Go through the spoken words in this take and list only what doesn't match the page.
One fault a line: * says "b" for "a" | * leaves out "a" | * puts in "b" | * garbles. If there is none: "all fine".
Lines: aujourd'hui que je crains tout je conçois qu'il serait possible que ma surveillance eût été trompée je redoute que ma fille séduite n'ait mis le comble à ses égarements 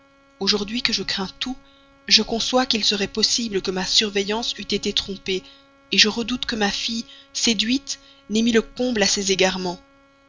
all fine